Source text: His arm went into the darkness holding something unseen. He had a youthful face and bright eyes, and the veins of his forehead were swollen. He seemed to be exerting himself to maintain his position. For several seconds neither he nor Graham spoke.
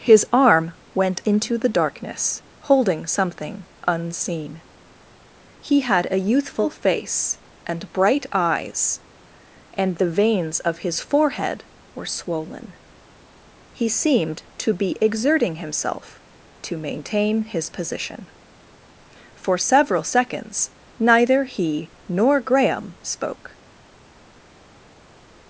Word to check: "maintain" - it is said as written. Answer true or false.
true